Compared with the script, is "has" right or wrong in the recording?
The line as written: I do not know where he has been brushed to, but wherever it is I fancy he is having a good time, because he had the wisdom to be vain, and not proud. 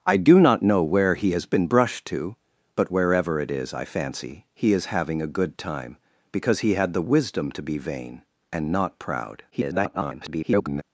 right